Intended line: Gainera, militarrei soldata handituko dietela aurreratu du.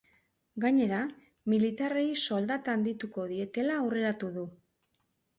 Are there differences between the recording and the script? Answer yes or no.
no